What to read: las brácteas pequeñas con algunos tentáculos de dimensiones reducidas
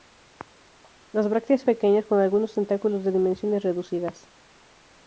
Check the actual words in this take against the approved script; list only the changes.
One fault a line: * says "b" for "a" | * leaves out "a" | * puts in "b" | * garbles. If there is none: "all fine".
all fine